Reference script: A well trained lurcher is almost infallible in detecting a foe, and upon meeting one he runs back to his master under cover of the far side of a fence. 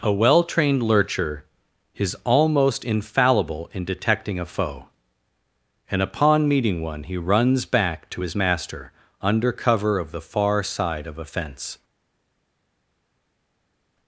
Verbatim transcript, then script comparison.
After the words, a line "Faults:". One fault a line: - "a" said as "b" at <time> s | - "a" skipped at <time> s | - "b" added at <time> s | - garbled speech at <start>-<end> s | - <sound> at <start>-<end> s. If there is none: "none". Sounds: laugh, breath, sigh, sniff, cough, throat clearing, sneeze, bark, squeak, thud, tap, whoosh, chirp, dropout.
A well trained lurcher is almost infallible in detecting a foe, and upon meeting one he runs back to his master under cover of the far side of a fence.
Faults:
none